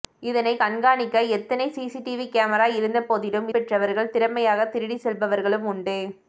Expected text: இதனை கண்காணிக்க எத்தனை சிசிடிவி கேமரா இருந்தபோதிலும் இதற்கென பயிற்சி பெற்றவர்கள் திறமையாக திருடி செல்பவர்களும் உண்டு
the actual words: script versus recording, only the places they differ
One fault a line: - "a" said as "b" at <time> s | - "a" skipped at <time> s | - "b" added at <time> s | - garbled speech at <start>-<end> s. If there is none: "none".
- "இதற்கென பயிற்சி" skipped at 3.5 s